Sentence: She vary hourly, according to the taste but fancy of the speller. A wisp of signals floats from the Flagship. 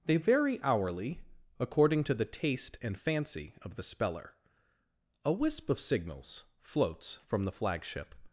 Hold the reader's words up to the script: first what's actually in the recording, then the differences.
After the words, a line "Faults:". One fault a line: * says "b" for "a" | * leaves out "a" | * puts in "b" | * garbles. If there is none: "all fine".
They vary hourly, according to the taste and fancy of the speller. A wisp of signals floats from the Flagship.
Faults:
* says "They" for "She"
* says "and" for "but"